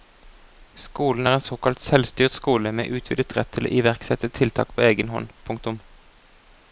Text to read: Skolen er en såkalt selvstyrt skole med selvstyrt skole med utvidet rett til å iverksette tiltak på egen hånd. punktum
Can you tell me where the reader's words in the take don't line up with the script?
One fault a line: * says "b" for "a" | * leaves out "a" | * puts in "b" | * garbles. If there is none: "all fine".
* leaves out "selvstyrt skole med"